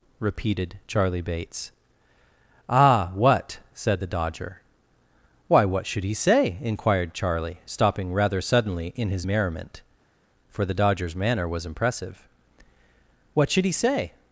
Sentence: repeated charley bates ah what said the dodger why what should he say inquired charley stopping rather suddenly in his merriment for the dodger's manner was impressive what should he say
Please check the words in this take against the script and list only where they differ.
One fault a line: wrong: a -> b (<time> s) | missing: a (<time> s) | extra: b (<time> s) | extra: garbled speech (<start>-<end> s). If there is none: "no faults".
no faults